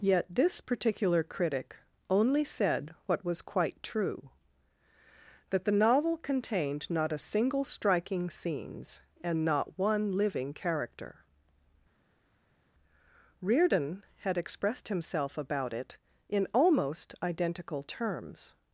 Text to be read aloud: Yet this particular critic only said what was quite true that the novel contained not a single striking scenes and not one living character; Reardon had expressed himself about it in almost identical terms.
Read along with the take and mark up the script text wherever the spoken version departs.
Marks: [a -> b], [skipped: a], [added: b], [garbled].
Yet this particular critic only said what was quite true that the novel contained not a single striking scenes and not one living character; Reardon had expressed himself about it in almost identical terms.